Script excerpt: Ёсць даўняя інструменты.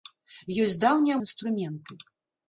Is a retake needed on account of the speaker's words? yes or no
no